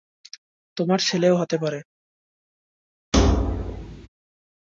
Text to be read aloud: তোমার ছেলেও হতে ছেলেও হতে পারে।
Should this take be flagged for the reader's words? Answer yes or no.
yes